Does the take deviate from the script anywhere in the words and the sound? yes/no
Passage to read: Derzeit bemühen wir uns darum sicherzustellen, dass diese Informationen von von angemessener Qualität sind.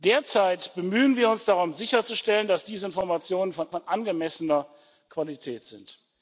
no